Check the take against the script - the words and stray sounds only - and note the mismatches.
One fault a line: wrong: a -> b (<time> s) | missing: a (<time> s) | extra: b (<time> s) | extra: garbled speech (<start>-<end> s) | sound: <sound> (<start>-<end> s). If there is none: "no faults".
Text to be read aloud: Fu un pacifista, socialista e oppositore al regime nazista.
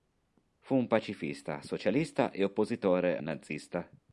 missing: al regime (3.2 s)